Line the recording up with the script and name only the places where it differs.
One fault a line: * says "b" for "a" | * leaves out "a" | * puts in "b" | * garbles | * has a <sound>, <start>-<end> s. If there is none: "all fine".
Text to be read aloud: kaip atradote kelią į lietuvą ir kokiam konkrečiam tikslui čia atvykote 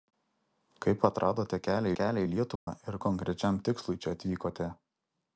* puts in "kelią"
* has a dropout, 2.6-2.7 s
* leaves out "kokiam"